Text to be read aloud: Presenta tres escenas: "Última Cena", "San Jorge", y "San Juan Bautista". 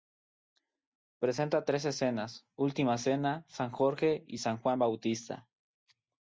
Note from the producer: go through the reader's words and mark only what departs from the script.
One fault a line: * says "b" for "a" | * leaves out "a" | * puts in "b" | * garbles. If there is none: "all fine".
all fine